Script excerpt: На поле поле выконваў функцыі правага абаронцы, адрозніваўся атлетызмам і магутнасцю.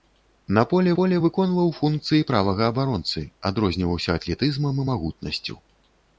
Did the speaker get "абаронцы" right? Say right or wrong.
right